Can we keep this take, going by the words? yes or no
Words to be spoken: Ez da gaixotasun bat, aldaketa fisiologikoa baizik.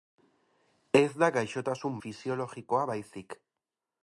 no